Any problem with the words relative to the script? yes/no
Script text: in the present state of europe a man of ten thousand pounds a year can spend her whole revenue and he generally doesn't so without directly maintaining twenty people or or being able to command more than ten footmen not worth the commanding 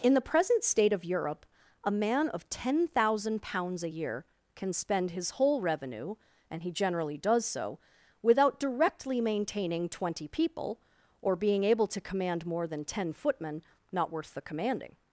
yes